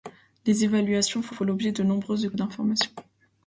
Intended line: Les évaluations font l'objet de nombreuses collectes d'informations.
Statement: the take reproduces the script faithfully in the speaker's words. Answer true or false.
false